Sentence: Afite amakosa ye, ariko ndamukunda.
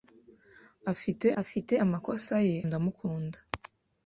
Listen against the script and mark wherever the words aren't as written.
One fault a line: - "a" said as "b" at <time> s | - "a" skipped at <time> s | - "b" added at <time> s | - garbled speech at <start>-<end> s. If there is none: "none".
- "afite" added at 1.4 s
- "ariko" skipped at 2.6 s